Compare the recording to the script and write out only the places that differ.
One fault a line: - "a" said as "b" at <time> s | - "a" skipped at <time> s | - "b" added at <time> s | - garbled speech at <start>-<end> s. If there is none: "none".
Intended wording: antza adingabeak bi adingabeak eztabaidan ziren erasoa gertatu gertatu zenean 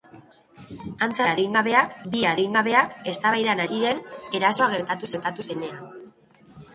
none